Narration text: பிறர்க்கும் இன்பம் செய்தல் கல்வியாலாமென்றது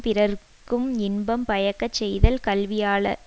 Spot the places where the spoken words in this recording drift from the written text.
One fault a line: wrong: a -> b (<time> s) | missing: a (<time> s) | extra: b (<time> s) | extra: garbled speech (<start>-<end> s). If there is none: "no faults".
extra: பயக்கச் (1.5 s)